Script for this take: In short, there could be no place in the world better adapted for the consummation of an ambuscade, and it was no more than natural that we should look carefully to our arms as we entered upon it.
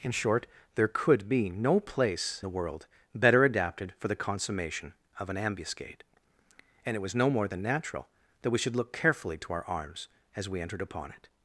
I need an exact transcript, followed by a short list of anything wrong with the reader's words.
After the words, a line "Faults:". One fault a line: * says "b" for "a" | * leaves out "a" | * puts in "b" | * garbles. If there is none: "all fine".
In short, there could be no place the world better adapted for the consummation of an ambuscade, and it was no more than natural that we should look carefully to our arms as we entered upon it.
Faults:
* leaves out "in"